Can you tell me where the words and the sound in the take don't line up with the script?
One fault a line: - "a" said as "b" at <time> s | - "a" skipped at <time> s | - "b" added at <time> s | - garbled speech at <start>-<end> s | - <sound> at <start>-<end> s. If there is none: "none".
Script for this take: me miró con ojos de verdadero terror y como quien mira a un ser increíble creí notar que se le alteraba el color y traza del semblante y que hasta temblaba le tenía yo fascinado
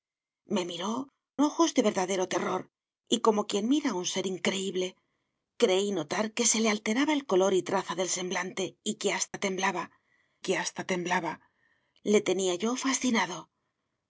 - "con" skipped at 1.1 s
- dropout at 9.3-9.3 s
- "que hasta temblaba" added at 10.4 s